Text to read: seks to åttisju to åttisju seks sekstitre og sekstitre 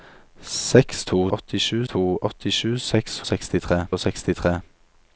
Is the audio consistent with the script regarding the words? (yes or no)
yes